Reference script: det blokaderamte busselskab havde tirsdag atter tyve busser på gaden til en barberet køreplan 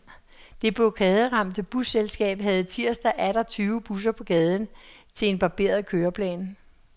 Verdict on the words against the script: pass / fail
pass